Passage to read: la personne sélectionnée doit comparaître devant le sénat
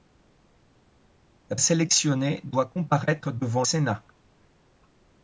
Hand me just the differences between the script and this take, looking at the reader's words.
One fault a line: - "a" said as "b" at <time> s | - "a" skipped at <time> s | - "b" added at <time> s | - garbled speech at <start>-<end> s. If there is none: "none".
- "personne" skipped at 1.6 s
- "le" skipped at 3.6 s